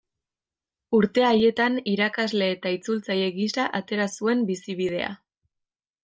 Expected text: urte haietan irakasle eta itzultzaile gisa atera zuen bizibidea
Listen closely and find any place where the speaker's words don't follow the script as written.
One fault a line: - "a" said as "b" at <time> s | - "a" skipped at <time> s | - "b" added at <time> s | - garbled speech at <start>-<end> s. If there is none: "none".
none